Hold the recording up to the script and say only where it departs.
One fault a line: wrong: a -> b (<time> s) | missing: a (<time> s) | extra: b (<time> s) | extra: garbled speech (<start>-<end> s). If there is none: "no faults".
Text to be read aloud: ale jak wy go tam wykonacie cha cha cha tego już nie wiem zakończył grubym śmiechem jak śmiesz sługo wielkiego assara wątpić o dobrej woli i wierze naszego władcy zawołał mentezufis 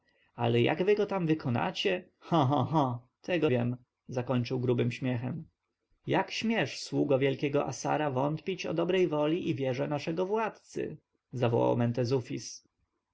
missing: już nie (3.5 s)